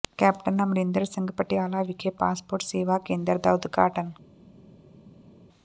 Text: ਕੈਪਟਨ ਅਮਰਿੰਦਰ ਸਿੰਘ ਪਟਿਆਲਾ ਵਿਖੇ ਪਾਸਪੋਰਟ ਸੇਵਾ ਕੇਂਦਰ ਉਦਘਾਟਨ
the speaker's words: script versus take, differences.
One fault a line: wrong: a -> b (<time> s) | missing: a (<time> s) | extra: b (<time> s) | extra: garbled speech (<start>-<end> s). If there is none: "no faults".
extra: ਦਾ (3.4 s)